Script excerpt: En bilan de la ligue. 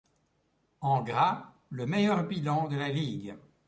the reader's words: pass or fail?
fail